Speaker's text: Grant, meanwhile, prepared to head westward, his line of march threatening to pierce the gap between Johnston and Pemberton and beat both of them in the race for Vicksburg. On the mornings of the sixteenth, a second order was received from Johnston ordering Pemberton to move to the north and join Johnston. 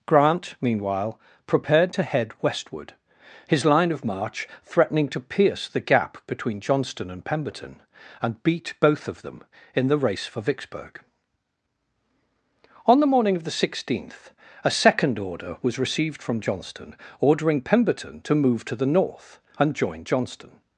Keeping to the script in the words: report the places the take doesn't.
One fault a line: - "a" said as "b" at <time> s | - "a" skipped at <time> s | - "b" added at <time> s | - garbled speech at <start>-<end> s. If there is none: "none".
- "mornings" said as "morning" at 13.1 s